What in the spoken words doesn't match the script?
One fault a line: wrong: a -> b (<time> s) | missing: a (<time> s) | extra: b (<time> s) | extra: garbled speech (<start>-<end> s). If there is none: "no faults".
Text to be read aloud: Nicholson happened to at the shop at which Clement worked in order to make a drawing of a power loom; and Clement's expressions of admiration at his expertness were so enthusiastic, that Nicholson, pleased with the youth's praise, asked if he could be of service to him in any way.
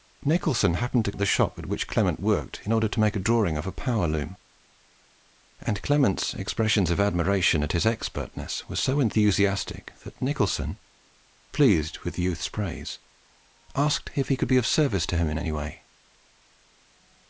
no faults